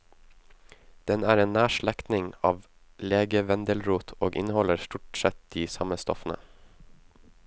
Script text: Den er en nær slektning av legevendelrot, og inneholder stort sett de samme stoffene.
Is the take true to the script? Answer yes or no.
yes